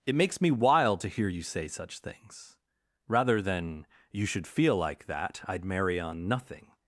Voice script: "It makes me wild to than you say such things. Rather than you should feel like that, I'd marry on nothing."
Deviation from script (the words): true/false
true